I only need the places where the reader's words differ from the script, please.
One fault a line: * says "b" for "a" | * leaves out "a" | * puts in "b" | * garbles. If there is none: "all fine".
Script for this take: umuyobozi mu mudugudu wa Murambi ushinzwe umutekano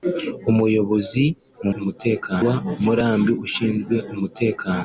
* says "umutekano" for "mudugudu"